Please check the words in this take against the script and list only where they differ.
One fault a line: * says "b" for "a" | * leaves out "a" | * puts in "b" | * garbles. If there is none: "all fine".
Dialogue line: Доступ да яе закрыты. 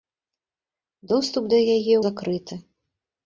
all fine